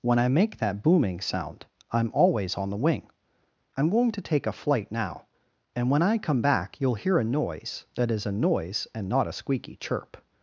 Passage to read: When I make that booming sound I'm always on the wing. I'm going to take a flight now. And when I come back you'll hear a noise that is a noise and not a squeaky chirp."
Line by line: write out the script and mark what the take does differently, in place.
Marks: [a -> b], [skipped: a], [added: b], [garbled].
When I make that booming sound I'm always on the wing. I'm going to take a flight now. And when I come back you'll hear a noise that is a noise and not a squeaky chirp."